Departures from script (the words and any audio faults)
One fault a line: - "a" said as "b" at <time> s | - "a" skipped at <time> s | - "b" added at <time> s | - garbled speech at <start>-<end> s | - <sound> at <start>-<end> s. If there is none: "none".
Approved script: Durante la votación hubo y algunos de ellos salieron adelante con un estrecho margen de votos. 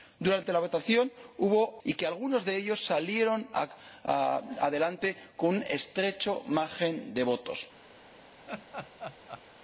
- laugh at 8.5-9.4 s